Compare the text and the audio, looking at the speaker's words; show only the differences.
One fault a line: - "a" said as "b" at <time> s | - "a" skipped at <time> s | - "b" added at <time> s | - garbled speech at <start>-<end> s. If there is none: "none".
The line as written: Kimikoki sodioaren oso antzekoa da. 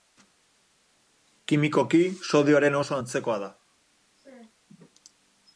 none